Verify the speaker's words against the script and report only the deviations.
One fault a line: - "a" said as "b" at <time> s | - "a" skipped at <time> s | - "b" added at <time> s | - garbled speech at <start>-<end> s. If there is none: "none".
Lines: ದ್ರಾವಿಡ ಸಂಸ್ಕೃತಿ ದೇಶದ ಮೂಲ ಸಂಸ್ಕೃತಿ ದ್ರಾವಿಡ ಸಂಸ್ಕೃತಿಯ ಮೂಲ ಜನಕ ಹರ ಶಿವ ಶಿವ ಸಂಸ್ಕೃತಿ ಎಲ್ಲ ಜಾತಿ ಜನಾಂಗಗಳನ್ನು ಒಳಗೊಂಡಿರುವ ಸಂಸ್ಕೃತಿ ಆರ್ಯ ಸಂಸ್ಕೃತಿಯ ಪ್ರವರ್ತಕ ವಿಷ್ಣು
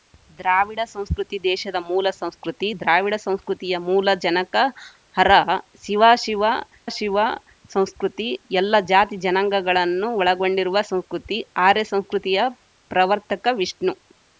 - "ಶಿವ" added at 6.9 s